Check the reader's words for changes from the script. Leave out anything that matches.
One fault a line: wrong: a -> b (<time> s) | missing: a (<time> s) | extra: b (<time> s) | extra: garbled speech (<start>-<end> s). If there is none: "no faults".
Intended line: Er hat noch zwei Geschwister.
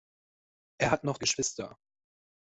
missing: zwei (1.2 s)